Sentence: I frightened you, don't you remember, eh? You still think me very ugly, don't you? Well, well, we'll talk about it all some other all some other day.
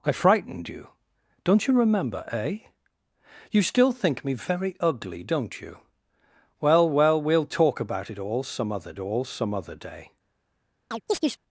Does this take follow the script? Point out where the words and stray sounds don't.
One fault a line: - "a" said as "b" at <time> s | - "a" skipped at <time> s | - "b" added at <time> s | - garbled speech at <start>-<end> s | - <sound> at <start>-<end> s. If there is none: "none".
- chirp at 10.9-11.4 s